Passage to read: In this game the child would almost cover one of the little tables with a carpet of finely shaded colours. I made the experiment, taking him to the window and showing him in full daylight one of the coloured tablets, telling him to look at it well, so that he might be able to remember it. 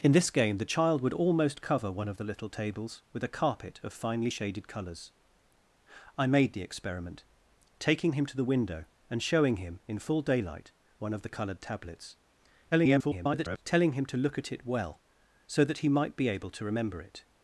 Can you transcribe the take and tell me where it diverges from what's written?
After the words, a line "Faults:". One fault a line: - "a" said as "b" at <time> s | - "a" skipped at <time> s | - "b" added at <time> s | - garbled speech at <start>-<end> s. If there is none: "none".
In this game the child would almost cover one of the little tables with a carpet of finely shaded colours. I made the experiment, taking him to the window and showing him in full daylight one of the coloured tablets, [garbled] telling him to look at it well, so that he might be able to remember it.
Faults:
- garbled speech at 12.7-13.6 s